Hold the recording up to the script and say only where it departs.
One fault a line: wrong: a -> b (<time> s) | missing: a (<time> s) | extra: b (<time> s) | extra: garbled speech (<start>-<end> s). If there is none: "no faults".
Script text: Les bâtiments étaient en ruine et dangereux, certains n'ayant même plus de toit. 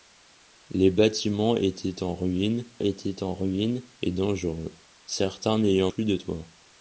extra: étaient en ruine (2.8 s)
missing: même (5.9 s)